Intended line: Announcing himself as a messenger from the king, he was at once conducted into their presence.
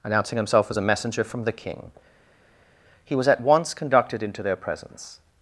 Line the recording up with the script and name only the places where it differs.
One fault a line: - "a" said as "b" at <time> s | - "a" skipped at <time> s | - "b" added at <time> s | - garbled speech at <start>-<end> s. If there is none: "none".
none